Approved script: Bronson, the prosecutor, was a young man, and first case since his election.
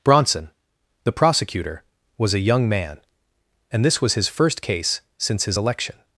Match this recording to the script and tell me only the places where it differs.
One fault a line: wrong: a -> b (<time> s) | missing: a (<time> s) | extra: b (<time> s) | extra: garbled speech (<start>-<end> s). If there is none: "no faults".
extra: this was his (3.9 s)